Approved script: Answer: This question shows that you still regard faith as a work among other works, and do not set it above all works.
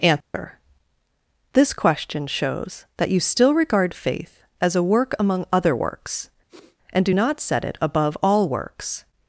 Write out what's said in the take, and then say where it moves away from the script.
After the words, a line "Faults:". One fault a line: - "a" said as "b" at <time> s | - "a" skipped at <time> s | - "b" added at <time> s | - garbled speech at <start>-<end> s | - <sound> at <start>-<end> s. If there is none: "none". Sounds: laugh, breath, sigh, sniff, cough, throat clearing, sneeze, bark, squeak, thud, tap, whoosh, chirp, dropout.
Answer: This question shows that you still regard faith as a work among other works, and do not set it above all works.
Faults:
- dropout at 0.2-0.3 s
- sniff at 6.5-6.8 s